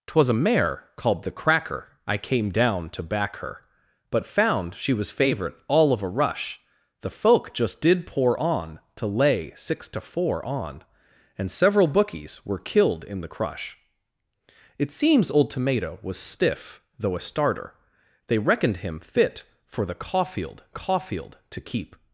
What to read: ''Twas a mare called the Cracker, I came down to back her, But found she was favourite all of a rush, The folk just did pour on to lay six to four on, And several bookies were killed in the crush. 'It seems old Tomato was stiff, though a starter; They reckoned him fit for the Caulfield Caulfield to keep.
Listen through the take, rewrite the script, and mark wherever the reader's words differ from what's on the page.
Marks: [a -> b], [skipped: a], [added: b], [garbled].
''Twas a mare called the Cracker, I came down to back her, But found she was favourite all of a rush, The folk just did pour on to lay six to four on, And several bookies were killed in the crush. 'It seems old Tomato was stiff, though a starter; They reckoned him fit for the Caulfield Caulfield to keep.